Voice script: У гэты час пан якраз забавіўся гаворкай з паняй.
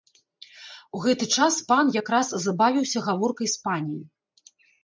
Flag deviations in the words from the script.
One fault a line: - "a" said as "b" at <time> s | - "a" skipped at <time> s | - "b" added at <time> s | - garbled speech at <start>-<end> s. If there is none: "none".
none